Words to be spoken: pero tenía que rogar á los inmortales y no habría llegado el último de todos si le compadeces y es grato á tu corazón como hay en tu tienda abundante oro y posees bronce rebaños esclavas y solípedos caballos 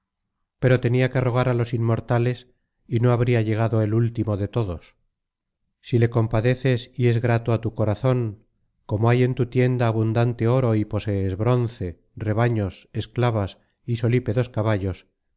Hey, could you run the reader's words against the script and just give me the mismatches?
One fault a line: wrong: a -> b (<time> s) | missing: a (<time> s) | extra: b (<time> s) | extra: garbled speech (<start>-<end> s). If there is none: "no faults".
no faults